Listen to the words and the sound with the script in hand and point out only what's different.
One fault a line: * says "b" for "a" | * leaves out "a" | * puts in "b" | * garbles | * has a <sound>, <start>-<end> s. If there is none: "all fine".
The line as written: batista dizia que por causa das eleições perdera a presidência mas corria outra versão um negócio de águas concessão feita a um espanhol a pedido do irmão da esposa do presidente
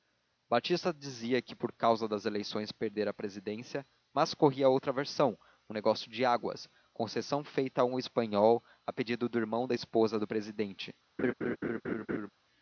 * has a laugh, 11.2-12.3 s